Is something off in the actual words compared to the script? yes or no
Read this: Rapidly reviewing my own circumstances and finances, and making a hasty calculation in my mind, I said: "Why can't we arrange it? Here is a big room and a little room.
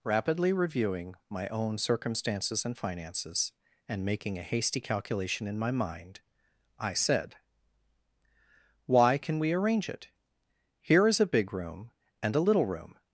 yes